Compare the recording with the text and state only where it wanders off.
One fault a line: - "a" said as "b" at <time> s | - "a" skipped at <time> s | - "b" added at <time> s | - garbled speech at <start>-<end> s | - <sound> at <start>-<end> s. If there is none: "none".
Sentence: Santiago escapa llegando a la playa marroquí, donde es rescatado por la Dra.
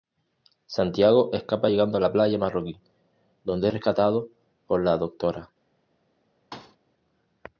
- thud at 6.5-6.8 s